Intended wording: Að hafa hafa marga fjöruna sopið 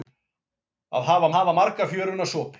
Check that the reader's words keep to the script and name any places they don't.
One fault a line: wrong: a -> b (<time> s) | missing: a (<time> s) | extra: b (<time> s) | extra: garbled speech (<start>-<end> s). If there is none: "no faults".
no faults